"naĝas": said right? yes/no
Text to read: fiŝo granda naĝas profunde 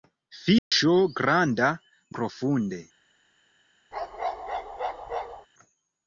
no